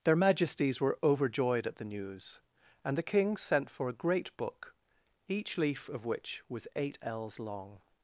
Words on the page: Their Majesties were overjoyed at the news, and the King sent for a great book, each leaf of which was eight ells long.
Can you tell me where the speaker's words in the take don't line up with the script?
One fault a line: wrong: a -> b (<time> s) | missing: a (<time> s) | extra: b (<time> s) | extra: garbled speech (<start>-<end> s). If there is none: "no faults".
no faults